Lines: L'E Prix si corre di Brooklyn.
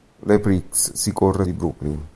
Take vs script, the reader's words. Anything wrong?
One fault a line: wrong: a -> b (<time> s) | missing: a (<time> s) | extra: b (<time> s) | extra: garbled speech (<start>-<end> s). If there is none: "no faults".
no faults